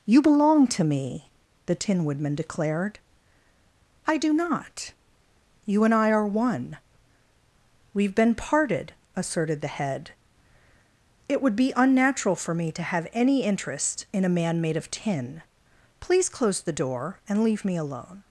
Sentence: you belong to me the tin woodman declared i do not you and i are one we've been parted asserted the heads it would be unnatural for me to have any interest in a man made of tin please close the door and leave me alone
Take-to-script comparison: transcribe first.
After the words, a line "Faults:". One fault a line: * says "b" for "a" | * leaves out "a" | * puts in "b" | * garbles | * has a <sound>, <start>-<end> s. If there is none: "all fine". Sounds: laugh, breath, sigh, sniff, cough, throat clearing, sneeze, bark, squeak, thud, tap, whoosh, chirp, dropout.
you belong to me the tin woodman declared i do not you and i are one we've been parted asserted the head it would be unnatural for me to have any interest in a man made of tin please close the door and leave me alone
Faults:
* says "head" for "heads"